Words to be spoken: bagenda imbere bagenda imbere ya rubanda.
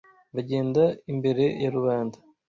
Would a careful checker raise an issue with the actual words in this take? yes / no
yes